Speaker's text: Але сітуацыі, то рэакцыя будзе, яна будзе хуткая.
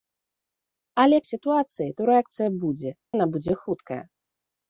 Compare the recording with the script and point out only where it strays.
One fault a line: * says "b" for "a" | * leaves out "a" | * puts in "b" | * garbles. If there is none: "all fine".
all fine